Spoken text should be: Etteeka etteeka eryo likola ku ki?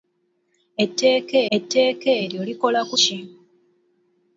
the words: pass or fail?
pass